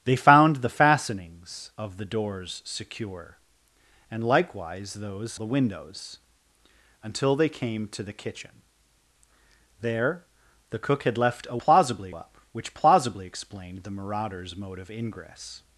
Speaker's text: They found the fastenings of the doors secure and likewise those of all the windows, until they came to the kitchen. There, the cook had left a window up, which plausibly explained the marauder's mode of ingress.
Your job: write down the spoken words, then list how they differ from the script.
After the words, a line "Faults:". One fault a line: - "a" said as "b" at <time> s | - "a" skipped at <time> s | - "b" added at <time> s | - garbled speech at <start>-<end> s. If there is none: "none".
They found the fastenings of the doors secure and likewise those the windows, until they came to the kitchen. There, the cook had left a plausibly up, which plausibly explained the marauder's mode of ingress.
Faults:
- "of all" skipped at 5.4 s
- "window" said as "plausibly" at 11.6 s